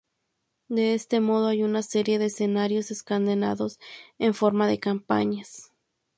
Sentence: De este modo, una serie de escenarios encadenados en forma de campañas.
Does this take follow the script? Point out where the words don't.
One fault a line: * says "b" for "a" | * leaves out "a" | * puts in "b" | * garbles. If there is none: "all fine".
* puts in "hay"